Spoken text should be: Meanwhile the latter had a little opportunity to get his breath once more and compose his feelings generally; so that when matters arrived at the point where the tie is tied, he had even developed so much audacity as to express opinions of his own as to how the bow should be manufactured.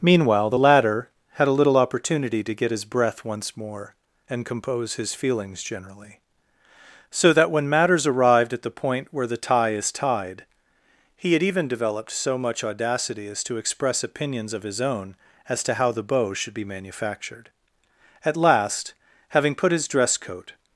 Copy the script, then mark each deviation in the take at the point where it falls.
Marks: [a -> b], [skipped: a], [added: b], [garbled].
Meanwhile the latter had a little opportunity to get his breath once more and compose his feelings generally; so that when matters arrived at the point where the tie is tied, he had even developed so much audacity as to express opinions of his own as to how the bow should be manufactured. [added: At last having put his dress coat]